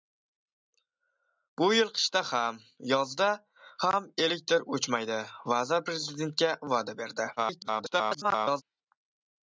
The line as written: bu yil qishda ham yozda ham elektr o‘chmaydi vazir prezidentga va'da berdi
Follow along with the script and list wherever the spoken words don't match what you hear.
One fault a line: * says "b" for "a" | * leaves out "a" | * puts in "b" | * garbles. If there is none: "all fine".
* garbles